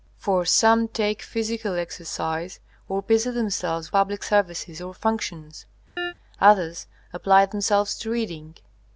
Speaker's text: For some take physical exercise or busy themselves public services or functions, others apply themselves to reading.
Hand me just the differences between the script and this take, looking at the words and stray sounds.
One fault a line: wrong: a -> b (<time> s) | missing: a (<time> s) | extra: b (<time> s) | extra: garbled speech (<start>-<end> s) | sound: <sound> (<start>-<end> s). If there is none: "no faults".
sound: chirp (6.0-6.1 s)